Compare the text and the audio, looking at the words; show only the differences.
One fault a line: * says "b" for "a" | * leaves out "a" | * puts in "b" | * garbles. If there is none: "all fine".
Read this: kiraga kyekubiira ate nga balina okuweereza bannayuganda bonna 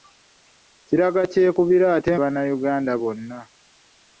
* leaves out "nga balina okuweereza"